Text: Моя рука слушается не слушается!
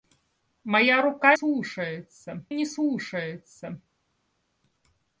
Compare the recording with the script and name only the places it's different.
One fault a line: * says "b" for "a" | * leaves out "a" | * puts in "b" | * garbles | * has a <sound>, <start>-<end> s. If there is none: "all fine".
all fine